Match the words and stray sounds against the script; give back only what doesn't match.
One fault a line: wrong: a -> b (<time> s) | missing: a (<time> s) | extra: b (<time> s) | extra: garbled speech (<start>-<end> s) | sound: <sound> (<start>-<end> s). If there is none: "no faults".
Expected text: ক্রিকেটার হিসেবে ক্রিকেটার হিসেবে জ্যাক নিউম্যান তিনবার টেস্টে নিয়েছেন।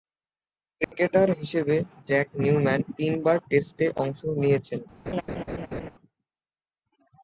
sound: dropout (0.8-0.9 s)
missing: ক্রিকেটার হিসেবে (1.8 s)
extra: অংশ (4.0 s)
sound: laugh (5.1-5.9 s)